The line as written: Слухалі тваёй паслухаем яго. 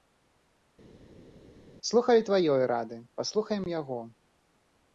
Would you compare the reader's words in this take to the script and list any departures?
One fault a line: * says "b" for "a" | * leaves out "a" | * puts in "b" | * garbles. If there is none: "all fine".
* puts in "рады"